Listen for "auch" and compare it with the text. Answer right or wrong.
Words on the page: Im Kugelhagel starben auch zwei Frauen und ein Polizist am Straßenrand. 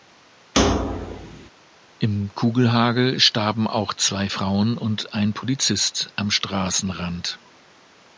right